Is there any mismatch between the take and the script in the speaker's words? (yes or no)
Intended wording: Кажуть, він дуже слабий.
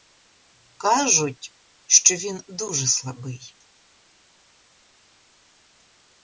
yes